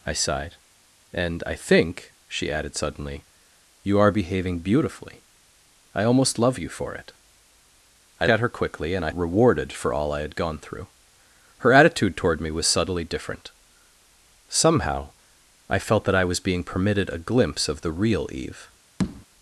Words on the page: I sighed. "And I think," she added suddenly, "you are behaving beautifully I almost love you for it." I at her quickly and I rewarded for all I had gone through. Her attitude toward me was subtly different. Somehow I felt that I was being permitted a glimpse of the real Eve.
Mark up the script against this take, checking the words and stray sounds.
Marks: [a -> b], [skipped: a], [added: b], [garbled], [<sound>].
I sighed. "And I think," she added suddenly, "you are behaving beautifully I almost love you for it." I at her quickly and I rewarded for all I had gone through. Her attitude toward me was subtly different. Somehow I felt that I was being permitted a glimpse of the real Eve. [tap]